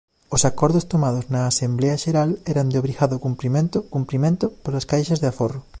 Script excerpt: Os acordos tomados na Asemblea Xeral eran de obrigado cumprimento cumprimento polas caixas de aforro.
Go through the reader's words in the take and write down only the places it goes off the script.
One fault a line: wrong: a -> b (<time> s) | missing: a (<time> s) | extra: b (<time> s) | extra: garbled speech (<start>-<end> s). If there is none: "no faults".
no faults